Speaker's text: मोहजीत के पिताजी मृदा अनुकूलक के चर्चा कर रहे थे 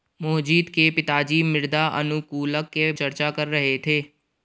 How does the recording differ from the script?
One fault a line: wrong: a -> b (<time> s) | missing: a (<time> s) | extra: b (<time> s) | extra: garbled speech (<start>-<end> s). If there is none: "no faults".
no faults